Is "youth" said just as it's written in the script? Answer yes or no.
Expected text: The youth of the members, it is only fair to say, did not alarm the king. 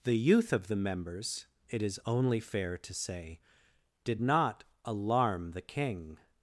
yes